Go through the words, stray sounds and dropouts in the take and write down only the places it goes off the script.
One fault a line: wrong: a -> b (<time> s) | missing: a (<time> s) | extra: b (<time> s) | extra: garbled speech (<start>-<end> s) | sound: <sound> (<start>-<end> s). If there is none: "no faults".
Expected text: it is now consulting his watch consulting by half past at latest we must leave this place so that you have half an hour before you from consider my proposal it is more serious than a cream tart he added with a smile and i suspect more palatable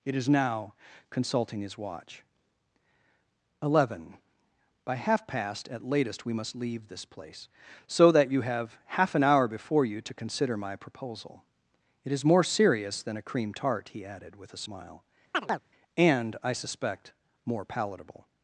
wrong: consulting -> eleven (3.6 s)
wrong: from -> to (10.0 s)
sound: chirp (15.3-15.6 s)